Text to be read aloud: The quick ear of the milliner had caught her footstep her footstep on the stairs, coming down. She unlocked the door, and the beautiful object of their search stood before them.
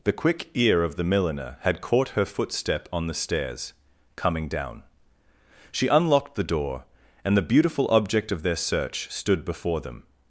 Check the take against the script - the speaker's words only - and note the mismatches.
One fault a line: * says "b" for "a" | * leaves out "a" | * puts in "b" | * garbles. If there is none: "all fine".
* leaves out "her footstep"